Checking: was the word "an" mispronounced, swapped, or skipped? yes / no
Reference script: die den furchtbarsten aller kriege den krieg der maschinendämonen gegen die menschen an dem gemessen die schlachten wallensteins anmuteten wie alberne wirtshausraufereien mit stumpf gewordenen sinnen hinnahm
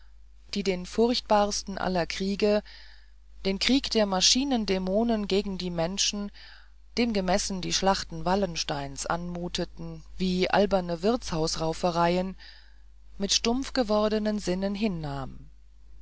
yes